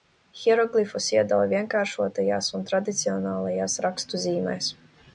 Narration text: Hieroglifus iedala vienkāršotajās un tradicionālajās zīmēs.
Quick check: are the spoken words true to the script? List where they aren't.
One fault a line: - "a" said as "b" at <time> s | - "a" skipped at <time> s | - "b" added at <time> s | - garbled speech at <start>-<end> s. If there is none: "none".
- "rakstu" added at 3.9 s